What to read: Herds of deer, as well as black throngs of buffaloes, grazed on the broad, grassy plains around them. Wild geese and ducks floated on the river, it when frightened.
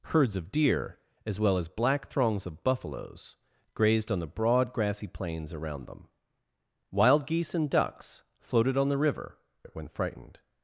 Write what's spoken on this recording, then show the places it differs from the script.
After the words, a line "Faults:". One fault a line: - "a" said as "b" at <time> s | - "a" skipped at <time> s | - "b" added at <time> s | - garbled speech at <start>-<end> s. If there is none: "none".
Herds of deer, as well as black throngs of buffaloes, grazed on the broad, grassy plains around them. Wild geese and ducks floated on the river, it when frightened.
Faults:
none